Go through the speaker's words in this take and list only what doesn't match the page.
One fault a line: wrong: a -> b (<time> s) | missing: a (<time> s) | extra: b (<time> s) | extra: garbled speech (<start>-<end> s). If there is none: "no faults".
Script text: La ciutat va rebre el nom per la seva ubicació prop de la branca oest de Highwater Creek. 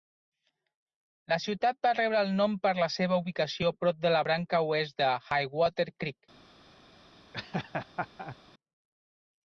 no faults